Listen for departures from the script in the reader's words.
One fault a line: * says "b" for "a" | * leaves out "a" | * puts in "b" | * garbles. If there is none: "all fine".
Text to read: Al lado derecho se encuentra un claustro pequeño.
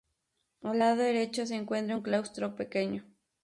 all fine